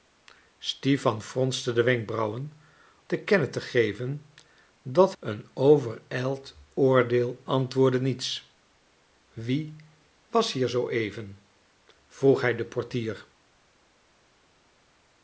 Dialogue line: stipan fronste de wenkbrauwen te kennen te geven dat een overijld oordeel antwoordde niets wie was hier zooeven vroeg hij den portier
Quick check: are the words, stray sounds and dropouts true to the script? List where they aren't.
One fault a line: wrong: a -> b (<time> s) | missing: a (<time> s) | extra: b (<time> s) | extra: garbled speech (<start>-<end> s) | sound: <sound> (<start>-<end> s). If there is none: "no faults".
no faults